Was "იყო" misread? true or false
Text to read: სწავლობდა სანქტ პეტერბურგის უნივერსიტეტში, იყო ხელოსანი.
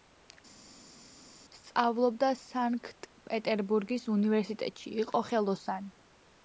false